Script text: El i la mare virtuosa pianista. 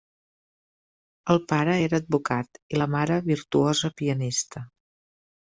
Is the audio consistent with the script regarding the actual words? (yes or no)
no